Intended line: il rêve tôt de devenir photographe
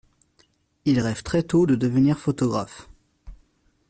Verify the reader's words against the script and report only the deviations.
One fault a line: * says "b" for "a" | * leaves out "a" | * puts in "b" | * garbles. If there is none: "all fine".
* puts in "très"